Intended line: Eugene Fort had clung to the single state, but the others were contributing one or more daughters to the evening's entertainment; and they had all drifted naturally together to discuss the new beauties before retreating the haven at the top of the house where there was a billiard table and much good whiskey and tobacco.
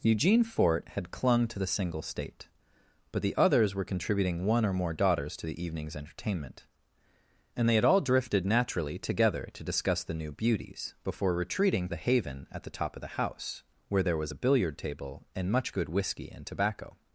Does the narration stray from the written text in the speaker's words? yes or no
no